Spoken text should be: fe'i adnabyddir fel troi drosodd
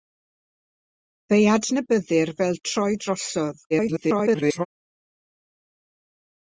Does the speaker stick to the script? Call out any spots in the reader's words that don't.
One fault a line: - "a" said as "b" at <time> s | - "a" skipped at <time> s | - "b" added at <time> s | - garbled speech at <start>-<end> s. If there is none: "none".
- garbled speech at 3.7-4.7 s